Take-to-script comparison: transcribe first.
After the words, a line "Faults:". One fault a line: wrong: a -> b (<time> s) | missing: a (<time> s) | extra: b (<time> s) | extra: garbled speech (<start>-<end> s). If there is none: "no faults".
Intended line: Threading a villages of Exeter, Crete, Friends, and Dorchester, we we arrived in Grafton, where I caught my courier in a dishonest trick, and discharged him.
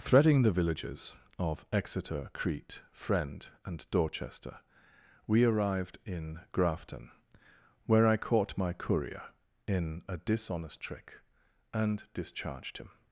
Threading the villages of Exeter, Crete, Friend, and Dorchester, we arrived in Grafton, where I caught my courier in a dishonest trick, and discharged him.
Faults:
wrong: a -> the (0.4 s)
wrong: Friends -> Friend (2.9 s)
missing: we (5.4 s)